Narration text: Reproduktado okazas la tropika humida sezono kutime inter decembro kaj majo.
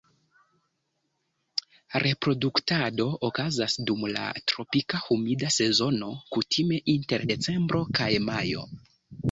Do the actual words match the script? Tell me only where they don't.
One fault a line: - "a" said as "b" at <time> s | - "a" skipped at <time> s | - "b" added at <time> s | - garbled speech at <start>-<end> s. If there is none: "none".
- "dum" added at 3.9 s